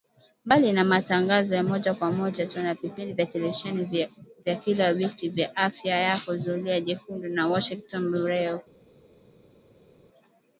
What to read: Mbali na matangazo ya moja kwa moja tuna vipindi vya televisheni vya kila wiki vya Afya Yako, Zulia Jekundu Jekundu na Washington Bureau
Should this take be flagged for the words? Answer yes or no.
yes